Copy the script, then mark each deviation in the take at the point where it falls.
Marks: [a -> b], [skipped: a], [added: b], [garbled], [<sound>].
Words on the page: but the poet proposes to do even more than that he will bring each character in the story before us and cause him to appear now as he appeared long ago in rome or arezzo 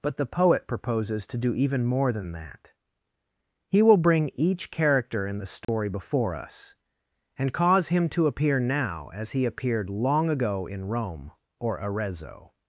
but the poet proposes to do even more than that he will bring each character in the story [dropout] before us and cause him to appear now as he appeared long ago in rome or arezzo